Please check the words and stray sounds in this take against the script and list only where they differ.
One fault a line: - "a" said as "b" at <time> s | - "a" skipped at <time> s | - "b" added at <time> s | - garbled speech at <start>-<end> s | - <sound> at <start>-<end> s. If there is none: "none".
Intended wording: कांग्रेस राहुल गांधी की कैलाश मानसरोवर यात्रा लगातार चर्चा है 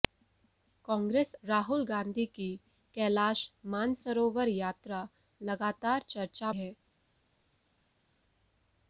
none